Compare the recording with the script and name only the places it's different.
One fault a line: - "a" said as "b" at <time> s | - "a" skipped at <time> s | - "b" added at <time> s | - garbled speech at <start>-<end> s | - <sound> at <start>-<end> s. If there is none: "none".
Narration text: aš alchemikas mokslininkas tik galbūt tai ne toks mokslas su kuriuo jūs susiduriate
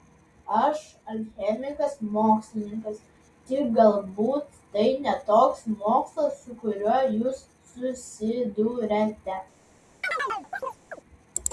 - chirp at 10.0-11.0 s